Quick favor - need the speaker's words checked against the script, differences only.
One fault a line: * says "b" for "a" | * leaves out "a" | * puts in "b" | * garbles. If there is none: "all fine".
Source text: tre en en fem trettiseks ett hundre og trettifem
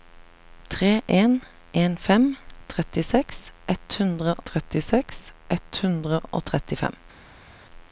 * puts in "trettiseks ett hundre"